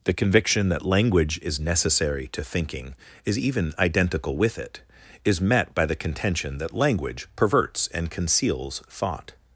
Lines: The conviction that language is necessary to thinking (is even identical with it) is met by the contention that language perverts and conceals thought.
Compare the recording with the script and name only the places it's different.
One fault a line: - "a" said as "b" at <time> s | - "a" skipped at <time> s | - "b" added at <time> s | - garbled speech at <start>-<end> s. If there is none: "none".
none